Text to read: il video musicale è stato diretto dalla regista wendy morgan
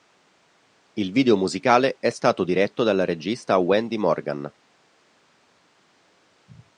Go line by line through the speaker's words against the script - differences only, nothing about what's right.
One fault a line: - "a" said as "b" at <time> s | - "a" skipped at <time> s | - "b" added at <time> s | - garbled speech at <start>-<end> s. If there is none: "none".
none